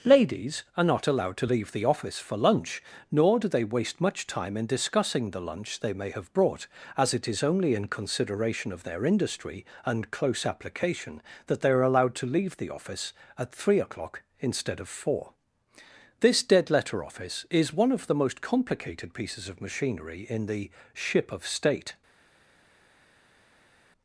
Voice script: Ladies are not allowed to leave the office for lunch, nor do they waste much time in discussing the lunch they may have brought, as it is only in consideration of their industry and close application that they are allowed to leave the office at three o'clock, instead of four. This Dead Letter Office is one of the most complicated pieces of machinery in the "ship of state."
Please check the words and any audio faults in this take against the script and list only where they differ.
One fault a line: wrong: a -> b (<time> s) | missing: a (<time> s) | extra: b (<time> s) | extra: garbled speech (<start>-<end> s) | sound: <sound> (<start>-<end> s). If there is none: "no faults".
no faults